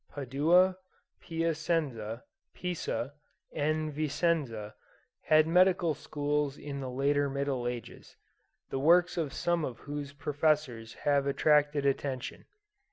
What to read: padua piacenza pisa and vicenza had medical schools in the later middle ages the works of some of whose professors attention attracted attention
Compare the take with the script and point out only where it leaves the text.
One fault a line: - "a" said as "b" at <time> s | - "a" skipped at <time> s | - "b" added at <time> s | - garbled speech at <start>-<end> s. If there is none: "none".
- "attention" said as "have" at 11.0 s